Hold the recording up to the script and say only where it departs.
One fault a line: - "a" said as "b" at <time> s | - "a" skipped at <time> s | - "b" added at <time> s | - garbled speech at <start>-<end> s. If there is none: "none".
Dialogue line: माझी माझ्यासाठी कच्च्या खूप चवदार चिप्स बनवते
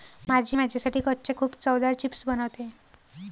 none